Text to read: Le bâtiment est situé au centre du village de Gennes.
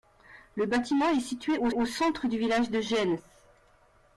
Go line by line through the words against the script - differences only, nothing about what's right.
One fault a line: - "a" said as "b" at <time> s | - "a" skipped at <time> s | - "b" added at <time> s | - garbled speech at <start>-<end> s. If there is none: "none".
- "au" added at 1.7 s